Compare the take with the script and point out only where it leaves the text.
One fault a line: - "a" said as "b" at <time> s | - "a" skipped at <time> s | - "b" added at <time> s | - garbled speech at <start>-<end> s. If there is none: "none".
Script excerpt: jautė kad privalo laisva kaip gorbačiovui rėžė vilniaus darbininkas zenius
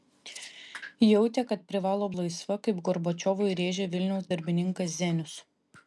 none